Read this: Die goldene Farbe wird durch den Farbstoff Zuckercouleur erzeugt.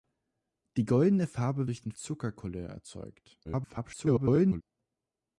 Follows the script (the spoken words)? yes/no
no